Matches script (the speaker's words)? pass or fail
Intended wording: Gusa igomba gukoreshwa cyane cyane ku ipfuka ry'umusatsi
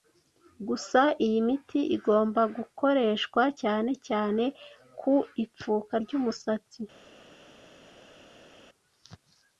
fail